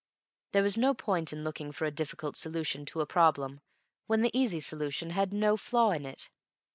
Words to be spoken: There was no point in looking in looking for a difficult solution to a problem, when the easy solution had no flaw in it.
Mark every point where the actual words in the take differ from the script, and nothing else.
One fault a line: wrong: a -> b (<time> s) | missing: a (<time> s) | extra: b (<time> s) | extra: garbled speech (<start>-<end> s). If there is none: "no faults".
missing: in looking (1.7 s)